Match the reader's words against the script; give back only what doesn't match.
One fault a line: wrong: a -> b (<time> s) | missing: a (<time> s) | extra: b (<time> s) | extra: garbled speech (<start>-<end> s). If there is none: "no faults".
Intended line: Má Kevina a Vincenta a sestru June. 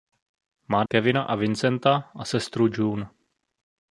no faults